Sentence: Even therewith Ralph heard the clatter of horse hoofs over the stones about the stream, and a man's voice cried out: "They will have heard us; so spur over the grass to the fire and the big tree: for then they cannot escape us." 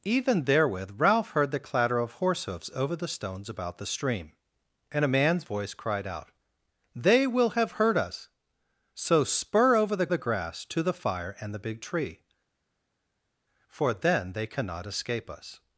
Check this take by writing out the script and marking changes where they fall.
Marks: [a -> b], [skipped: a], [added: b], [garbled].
Even therewith Ralph heard the clatter of horse hoofs over the stones about the stream, and a man's voice cried out: "They will have heard us; so spur over the [added: the] grass to the fire and the big tree: for then they cannot escape us."